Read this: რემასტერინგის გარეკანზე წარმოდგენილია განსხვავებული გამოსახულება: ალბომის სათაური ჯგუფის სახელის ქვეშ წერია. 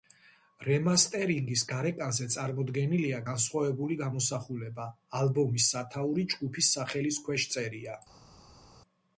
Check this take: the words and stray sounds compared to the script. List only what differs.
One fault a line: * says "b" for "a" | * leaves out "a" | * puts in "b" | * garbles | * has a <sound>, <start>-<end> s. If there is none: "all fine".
all fine